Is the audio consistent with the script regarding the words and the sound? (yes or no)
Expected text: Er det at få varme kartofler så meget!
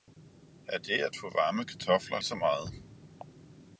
yes